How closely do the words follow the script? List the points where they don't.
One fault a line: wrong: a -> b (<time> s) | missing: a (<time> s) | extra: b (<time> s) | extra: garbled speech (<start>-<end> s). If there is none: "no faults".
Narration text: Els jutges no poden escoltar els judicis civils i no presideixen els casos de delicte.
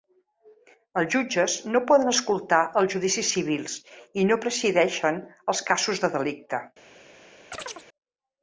no faults